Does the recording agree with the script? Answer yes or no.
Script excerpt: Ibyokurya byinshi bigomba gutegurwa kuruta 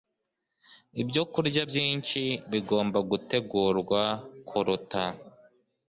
yes